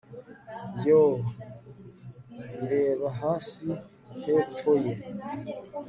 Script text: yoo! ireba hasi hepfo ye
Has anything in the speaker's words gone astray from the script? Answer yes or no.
no